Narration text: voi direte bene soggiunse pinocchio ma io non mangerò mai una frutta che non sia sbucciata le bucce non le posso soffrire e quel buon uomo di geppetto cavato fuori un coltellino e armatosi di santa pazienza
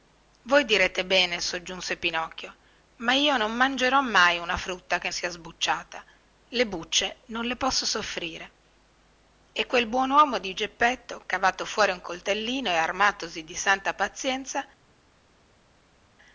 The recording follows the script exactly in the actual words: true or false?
false